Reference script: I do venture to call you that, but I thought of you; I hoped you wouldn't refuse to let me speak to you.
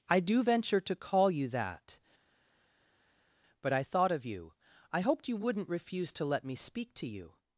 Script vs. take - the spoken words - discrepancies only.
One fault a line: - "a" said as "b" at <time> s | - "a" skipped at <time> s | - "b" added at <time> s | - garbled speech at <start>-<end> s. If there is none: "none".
none